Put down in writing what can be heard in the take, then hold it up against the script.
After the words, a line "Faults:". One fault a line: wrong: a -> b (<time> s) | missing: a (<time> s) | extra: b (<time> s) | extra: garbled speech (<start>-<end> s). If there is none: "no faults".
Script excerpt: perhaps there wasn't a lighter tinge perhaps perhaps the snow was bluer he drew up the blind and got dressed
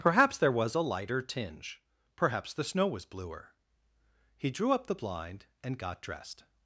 perhaps there was a lighter tinge perhaps the snow was bluer he drew up the blind and got dressed
Faults:
wrong: wasn't -> was (0.5 s)
missing: perhaps (2.5 s)